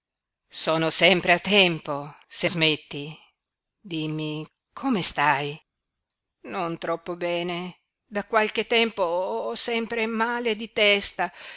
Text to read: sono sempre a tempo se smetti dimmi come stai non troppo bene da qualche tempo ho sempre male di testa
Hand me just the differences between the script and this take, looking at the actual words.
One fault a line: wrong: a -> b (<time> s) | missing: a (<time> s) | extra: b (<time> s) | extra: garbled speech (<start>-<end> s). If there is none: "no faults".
no faults